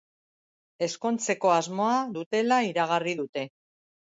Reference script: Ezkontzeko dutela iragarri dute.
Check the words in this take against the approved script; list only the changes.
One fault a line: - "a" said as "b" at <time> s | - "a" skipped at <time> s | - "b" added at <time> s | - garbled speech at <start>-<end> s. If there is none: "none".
- "asmoa" added at 1.6 s